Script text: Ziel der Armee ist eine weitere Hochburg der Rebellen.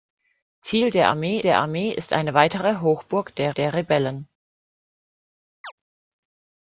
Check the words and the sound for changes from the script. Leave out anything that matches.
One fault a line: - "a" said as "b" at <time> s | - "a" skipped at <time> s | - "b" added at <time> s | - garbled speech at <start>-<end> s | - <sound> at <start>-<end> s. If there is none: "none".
- "der Armee" added at 1.4 s
- "der" added at 3.5 s
- chirp at 5.6-5.7 s